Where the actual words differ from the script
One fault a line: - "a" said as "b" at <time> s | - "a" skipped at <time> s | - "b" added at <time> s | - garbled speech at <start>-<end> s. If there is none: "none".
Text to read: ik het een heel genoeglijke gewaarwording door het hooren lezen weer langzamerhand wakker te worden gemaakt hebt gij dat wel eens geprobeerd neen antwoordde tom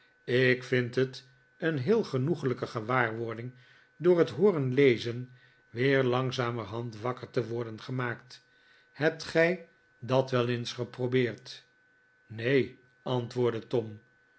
- "vind" added at 0.6 s